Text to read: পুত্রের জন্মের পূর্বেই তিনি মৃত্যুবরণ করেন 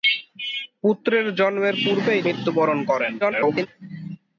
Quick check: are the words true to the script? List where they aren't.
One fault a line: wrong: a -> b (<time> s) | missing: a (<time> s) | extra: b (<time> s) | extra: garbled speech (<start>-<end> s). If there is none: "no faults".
missing: তিনি (2.2 s)
extra: garbled speech (3.2-3.7 s)